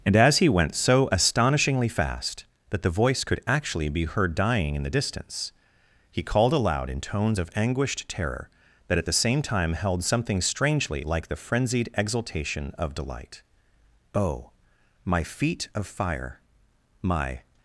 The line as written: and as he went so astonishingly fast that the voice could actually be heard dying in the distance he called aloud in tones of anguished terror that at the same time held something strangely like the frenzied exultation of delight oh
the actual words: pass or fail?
fail